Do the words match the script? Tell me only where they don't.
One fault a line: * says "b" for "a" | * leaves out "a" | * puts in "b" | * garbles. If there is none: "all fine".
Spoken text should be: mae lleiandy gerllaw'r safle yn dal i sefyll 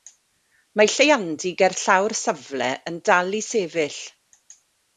all fine